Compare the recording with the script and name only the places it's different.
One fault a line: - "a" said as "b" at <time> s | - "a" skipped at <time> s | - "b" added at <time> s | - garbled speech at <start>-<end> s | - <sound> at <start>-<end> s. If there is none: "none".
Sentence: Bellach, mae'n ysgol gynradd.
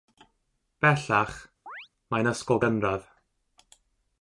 - chirp at 1.7-1.9 s